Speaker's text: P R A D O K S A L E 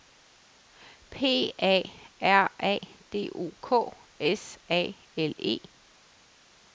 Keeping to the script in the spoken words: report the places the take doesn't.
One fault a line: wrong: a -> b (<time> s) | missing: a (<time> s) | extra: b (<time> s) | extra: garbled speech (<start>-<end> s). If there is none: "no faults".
extra: A (1.6 s)